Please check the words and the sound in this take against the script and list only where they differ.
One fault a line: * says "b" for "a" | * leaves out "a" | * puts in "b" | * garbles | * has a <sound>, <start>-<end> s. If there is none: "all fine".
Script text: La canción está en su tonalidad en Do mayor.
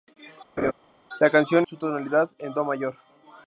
* has a laugh, 0.6-0.7 s
* leaves out "está en"